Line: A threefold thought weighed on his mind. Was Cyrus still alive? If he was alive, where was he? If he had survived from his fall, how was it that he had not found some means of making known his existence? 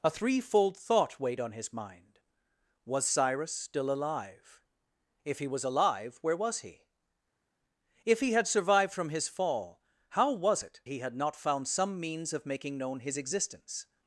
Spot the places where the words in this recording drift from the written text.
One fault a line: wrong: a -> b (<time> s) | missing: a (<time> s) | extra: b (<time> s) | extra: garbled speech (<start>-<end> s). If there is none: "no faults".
missing: that (10.8 s)